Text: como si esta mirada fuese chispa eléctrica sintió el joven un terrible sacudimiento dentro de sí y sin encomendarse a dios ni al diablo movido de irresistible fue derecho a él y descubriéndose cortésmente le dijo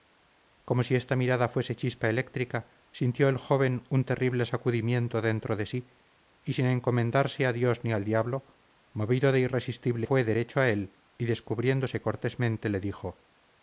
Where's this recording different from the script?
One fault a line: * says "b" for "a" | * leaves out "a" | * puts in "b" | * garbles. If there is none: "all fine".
all fine